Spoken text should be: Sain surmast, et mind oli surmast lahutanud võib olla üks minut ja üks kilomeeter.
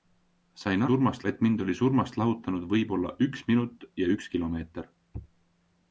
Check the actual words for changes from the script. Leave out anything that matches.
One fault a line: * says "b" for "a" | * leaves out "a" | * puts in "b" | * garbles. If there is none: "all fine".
all fine